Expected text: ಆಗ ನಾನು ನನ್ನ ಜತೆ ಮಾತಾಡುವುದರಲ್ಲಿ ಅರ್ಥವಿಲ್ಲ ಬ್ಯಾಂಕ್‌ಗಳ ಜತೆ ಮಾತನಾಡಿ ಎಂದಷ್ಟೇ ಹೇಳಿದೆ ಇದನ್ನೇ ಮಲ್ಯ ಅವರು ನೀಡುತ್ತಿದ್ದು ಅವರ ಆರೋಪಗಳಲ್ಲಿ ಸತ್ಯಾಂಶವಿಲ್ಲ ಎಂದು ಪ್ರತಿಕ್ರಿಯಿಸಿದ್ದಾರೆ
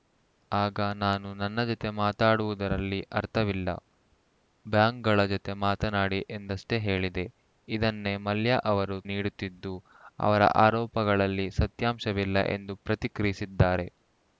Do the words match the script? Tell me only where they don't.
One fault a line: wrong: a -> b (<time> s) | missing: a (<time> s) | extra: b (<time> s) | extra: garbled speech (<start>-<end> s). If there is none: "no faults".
no faults